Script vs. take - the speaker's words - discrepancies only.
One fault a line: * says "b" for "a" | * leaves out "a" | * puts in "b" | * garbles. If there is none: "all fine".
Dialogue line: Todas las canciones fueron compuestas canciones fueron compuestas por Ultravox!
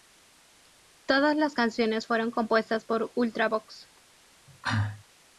* leaves out "canciones fueron compuestas"